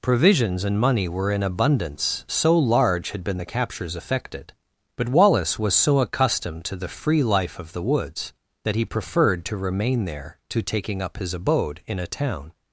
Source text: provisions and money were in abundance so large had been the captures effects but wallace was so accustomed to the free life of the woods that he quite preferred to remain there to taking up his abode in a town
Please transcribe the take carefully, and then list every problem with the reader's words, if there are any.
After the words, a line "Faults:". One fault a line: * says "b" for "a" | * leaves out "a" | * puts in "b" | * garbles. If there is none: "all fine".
provisions and money were in abundance so large had been the captures effected but wallace was so accustomed to the free life of the woods that he preferred to remain there to taking up his abode in a town
Faults:
* says "effected" for "effects"
* leaves out "quite"